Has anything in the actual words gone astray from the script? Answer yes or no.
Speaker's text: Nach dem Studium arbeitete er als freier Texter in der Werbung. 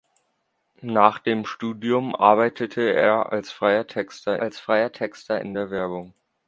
yes